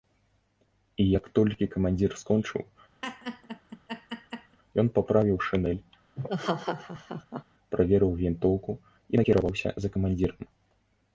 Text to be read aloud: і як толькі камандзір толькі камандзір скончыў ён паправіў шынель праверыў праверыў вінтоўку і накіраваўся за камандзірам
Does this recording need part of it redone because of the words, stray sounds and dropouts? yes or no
yes